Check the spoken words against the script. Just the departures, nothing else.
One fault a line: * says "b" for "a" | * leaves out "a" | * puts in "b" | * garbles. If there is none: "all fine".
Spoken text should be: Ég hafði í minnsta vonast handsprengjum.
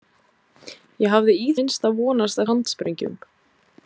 all fine